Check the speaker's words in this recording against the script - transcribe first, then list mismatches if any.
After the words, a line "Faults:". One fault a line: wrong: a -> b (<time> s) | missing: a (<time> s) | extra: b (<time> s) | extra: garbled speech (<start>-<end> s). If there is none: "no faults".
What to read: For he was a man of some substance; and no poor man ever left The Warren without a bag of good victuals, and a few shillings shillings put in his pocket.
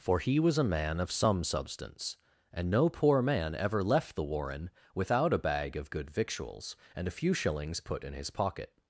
For he was a man of some substance; and no poor man ever left The Warren without a bag of good victuals, and a few shillings put in his pocket.
Faults:
missing: shillings (7.8 s)